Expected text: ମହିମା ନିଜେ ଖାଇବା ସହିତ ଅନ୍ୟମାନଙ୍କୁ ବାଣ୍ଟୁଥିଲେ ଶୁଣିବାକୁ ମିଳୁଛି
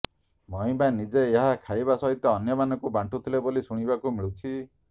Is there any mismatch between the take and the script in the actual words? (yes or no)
yes